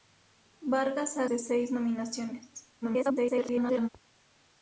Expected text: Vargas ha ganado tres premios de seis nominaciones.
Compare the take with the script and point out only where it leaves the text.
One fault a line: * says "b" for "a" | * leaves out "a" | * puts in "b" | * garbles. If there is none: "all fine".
* leaves out "ganado tres premios"
* garbles